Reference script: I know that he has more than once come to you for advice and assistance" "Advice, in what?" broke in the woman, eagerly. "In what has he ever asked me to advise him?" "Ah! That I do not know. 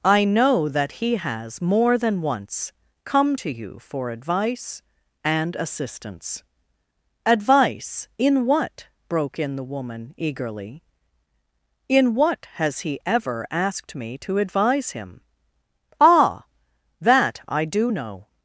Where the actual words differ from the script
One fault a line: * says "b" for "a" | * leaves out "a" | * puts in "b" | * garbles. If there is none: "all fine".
* leaves out "not"